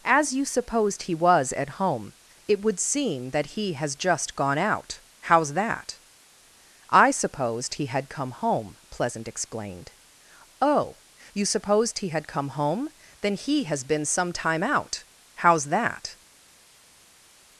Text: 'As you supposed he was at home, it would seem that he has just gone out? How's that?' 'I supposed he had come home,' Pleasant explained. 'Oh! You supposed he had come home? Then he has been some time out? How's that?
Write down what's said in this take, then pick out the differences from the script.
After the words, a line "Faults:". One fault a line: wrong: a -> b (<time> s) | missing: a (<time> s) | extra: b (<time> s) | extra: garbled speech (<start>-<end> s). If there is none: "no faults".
'As you supposed he was at home, it would seem that he has just gone out? How's that?' 'I supposed he had come home,' Pleasant explained. 'Oh! You supposed he had come home? Then he has been some time out? How's that?
Faults:
no faults